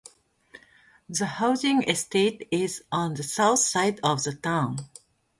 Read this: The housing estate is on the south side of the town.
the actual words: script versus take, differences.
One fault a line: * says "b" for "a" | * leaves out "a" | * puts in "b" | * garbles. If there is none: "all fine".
all fine